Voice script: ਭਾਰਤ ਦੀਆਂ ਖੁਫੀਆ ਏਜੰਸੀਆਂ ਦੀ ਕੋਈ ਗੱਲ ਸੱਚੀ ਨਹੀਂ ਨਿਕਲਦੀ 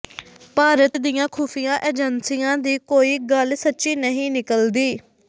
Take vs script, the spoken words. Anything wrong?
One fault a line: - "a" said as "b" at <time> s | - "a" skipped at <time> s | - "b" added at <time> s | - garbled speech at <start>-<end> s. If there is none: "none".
none